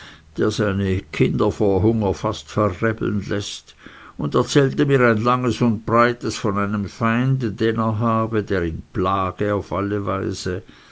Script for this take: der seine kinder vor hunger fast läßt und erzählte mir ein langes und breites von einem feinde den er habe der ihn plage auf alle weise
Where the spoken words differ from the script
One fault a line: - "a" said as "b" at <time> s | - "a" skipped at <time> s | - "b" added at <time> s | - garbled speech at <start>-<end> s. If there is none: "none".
- "verrebeln" added at 2.5 s